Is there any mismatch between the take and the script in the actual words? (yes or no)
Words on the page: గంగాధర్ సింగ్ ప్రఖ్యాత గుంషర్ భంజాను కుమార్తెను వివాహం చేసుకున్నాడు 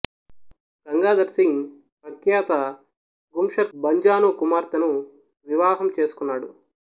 no